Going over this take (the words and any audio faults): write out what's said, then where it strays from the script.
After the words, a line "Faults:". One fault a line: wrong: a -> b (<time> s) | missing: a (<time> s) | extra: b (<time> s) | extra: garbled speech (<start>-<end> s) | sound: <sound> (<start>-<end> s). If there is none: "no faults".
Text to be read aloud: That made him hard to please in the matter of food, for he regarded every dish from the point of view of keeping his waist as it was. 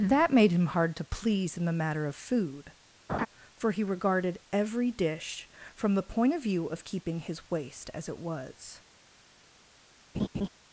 That made him hard to please in the matter of food, for he regarded every dish from the point of view of keeping his waist as it was.
Faults:
sound: laugh (3.1-3.3 s)
sound: laugh (10.1-10.5 s)